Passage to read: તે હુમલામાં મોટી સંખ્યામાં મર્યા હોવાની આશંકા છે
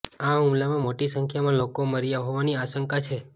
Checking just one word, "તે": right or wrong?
wrong